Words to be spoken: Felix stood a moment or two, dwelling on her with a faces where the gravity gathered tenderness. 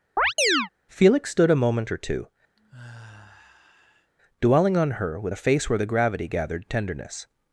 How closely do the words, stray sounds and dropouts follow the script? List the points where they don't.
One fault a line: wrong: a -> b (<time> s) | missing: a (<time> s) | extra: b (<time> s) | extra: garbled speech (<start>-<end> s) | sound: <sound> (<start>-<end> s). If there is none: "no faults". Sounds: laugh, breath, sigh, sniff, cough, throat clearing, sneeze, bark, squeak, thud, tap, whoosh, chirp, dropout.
sound: chirp (0.2-0.7 s)
sound: sigh (2.6-4.1 s)
wrong: faces -> face (5.4 s)